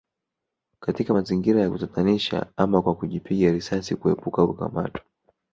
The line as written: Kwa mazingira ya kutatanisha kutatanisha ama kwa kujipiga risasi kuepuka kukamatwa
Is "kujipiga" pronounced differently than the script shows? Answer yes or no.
no